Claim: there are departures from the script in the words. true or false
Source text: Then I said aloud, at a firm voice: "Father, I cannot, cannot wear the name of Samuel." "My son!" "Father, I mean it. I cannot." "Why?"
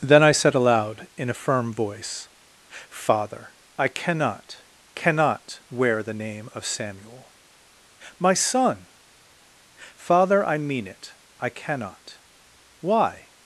true